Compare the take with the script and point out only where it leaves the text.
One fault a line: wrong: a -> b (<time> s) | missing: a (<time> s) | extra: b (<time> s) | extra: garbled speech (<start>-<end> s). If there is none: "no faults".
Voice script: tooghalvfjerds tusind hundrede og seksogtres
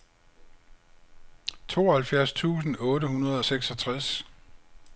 extra: otte (2.8 s)